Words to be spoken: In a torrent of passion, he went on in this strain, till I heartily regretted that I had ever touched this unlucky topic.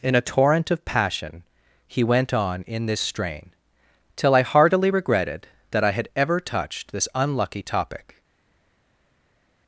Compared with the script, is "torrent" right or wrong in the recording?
right